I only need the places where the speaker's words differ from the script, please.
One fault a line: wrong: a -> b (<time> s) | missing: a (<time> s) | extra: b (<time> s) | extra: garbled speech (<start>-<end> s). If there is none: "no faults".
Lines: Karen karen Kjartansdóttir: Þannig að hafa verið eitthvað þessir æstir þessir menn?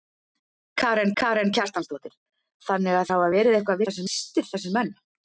no faults